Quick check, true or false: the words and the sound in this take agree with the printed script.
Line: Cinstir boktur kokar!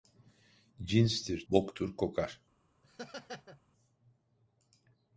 false